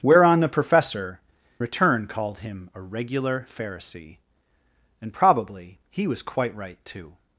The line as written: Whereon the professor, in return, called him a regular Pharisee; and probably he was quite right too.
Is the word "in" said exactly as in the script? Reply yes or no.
no